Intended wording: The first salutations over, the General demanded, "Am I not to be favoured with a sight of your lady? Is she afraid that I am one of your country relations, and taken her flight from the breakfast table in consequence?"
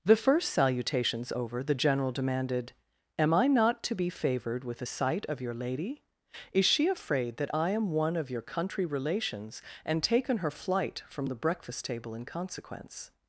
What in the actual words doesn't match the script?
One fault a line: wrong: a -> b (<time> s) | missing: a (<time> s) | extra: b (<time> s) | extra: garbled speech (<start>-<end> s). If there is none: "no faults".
no faults